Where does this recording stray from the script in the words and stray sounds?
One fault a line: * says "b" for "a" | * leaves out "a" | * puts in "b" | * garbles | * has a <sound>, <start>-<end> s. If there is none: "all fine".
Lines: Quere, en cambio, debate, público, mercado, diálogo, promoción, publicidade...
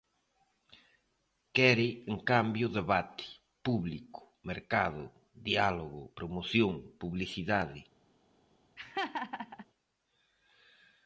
* has a laugh, 8.8-9.7 s